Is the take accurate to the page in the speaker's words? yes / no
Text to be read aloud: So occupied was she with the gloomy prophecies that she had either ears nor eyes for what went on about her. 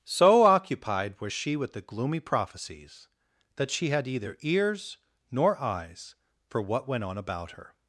yes